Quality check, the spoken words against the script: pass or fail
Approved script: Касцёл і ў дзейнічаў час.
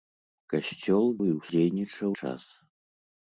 pass